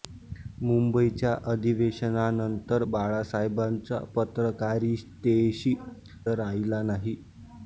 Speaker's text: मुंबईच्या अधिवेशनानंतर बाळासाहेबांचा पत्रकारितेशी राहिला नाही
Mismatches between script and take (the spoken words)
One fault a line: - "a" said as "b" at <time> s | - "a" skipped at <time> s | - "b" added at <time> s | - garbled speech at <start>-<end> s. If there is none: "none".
none